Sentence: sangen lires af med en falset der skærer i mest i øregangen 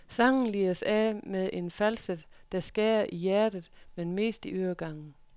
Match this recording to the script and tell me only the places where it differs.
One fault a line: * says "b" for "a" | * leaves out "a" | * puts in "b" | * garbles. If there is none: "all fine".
* puts in "hjertet men"